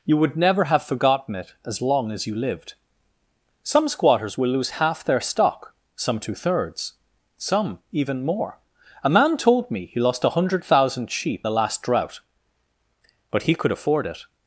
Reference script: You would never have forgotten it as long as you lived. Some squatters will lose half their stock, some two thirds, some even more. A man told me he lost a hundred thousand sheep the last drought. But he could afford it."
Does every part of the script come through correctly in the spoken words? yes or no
yes